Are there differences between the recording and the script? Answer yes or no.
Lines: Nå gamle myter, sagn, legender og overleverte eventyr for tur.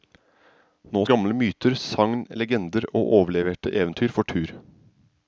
no